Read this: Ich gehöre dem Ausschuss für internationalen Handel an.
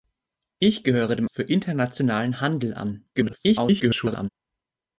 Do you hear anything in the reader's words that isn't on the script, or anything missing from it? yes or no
yes